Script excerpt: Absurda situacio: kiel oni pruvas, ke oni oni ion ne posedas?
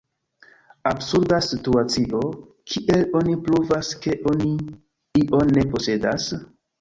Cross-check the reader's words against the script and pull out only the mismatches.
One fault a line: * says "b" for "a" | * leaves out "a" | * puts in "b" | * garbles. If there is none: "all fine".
* leaves out "oni"